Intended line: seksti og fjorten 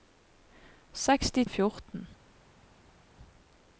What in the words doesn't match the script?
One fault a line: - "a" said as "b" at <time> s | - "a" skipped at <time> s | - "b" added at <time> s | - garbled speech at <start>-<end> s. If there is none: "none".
none